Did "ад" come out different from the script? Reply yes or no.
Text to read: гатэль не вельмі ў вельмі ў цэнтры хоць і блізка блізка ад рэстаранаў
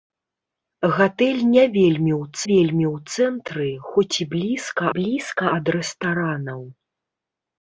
no